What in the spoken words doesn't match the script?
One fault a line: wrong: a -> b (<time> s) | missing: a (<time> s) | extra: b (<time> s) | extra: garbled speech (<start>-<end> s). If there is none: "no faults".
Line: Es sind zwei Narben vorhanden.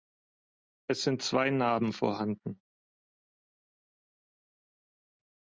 no faults